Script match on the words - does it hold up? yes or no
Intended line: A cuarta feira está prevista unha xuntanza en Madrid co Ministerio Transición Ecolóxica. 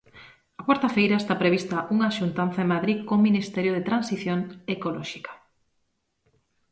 no